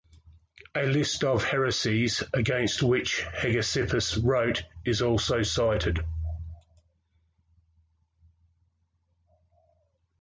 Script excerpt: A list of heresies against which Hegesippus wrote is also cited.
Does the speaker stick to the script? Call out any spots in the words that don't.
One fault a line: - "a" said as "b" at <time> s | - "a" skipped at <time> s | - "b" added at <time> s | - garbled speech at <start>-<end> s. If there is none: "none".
none